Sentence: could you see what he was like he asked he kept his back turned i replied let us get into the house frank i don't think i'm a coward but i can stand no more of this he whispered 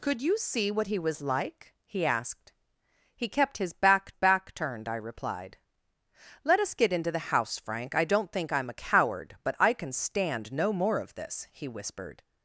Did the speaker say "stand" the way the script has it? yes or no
yes